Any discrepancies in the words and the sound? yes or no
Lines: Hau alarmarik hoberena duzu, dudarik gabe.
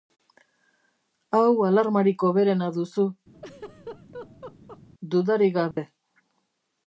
yes